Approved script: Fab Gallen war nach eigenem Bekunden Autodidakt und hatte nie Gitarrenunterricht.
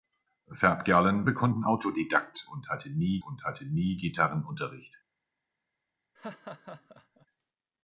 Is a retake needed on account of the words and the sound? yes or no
yes